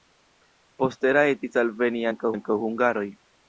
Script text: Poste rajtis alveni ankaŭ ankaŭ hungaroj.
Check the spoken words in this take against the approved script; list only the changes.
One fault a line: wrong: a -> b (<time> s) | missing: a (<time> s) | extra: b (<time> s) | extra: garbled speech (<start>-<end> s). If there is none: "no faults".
no faults